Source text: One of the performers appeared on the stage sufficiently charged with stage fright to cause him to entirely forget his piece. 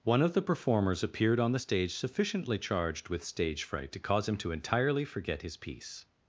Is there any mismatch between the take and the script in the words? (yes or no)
no